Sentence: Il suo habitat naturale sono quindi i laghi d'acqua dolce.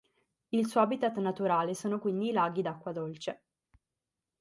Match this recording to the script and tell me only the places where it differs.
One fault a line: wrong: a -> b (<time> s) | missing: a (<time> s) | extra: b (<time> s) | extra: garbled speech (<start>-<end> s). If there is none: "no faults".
no faults